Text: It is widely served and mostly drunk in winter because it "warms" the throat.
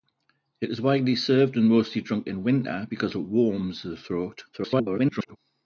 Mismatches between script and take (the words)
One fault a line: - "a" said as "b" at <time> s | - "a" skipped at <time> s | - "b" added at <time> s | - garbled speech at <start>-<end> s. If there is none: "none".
- garbled speech at 4.5-5.4 s